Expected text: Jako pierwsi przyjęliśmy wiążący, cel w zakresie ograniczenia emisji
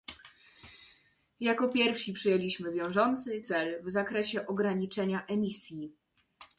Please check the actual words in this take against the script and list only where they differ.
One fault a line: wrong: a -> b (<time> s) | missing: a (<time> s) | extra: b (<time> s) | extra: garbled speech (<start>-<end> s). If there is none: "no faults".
no faults